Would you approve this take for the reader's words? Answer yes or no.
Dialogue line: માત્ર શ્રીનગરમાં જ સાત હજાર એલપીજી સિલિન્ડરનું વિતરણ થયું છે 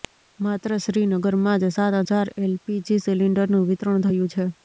yes